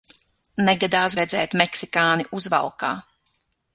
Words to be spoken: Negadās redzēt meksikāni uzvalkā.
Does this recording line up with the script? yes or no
yes